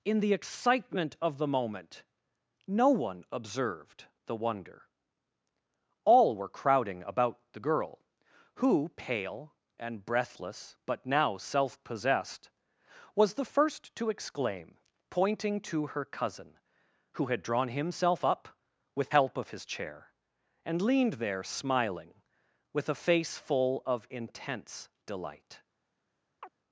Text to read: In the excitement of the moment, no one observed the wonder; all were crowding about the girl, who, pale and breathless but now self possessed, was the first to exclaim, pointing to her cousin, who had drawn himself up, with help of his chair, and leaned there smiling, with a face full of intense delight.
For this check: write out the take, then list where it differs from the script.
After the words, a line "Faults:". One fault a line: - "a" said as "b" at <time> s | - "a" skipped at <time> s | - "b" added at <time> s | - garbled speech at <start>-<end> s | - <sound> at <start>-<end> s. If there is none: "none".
In the excitement of the moment, no one observed the wonder; all were crowding about the girl, who, pale and breathless but now self possessed, was the first to exclaim, pointing to her cousin, who had drawn himself up, with help of his chair, and leaned there smiling, with a face full of intense delight.
Faults:
- chirp at 26.4-26.5 s